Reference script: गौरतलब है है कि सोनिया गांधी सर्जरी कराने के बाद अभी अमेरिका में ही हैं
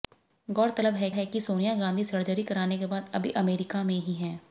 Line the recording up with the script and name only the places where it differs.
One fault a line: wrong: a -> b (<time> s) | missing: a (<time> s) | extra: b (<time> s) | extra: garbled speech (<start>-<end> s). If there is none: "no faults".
no faults